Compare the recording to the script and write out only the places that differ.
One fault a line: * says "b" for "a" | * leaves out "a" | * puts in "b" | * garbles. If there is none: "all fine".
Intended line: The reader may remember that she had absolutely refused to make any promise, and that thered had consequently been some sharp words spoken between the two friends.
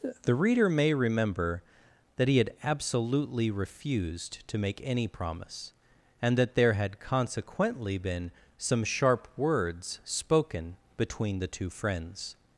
* says "he" for "she"
* says "there" for "thered"